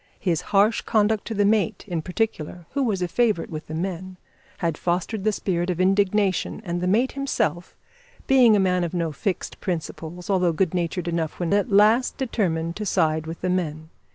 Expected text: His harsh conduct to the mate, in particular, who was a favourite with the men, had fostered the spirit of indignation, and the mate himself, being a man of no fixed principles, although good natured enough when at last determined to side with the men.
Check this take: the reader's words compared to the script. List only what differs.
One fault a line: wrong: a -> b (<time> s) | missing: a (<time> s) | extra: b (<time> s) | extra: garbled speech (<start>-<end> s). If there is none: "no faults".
no faults